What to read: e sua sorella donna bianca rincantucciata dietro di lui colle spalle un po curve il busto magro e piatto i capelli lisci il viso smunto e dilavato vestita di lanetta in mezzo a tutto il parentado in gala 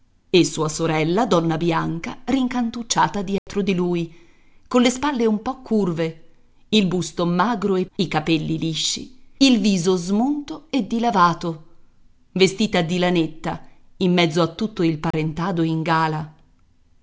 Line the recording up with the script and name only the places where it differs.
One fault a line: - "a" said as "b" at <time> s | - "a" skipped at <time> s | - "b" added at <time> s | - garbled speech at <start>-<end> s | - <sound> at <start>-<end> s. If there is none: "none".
- dropout at 3.4-3.5 s
- "piatto" skipped at 7.8 s
- dropout at 15.1-15.1 s